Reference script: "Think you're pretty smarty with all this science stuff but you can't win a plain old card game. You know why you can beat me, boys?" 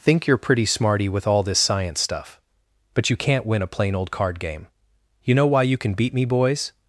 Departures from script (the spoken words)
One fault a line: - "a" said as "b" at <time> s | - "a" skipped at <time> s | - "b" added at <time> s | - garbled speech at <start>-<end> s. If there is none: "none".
none